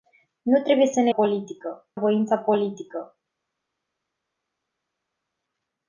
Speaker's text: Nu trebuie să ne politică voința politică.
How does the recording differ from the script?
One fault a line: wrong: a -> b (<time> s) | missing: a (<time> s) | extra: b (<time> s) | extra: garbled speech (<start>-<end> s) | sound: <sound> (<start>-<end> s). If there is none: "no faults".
no faults